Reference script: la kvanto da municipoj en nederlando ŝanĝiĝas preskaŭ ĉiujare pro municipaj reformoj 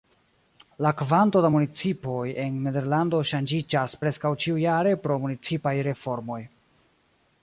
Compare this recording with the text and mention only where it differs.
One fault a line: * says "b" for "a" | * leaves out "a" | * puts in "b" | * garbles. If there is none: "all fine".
all fine